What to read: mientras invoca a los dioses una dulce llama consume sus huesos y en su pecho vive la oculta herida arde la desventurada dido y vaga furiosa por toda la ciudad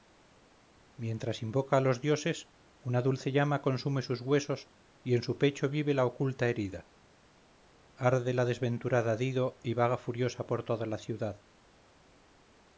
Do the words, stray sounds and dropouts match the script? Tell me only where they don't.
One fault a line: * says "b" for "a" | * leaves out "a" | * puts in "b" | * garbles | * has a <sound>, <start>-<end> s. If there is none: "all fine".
all fine